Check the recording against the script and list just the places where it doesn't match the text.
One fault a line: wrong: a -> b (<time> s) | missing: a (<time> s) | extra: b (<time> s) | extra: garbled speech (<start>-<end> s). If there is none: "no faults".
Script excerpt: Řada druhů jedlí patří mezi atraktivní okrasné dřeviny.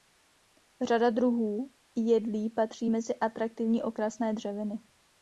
no faults